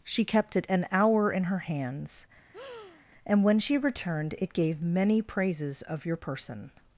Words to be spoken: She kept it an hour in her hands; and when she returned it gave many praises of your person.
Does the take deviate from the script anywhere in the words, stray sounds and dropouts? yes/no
yes